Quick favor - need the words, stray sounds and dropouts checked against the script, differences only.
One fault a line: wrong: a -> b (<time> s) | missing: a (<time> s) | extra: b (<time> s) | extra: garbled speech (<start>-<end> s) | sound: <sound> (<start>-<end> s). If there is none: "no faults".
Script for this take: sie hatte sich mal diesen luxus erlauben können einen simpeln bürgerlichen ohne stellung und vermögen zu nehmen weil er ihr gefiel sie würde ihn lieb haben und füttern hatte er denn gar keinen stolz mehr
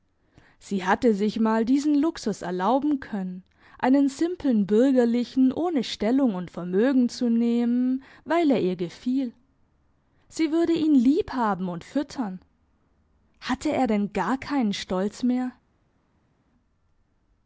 no faults